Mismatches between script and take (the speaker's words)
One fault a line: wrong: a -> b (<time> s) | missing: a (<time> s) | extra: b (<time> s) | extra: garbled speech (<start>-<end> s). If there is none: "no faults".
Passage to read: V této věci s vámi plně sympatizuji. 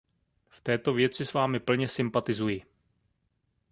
no faults